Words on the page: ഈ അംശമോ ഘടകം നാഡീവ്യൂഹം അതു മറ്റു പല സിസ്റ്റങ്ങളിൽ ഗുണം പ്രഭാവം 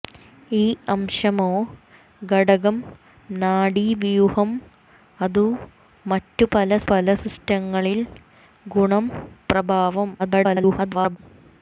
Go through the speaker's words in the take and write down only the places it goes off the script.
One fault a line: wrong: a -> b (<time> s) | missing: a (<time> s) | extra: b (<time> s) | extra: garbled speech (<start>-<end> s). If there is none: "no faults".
extra: പല (6.9 s)
extra: garbled speech (10.2-11.2 s)